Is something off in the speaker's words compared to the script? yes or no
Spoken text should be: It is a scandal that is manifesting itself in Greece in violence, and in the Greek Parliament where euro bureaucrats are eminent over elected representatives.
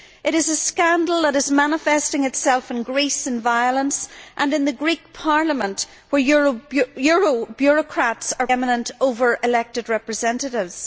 no